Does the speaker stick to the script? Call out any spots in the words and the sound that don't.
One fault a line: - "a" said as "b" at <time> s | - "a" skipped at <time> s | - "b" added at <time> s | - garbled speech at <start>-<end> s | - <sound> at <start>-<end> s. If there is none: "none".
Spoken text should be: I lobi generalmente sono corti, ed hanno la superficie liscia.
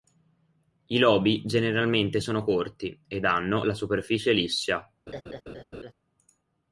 - laugh at 5.1-5.9 s